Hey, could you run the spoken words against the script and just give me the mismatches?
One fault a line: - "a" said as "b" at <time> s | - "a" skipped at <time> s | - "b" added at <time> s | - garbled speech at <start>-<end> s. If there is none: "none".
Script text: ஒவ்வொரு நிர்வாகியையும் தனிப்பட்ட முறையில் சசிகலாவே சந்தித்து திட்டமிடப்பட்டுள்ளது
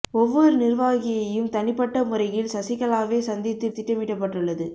none